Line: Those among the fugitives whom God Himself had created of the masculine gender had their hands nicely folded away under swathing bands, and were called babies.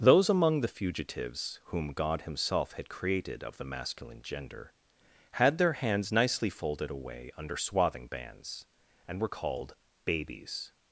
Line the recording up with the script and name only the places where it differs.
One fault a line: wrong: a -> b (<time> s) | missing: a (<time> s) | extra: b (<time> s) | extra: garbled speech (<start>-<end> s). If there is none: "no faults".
no faults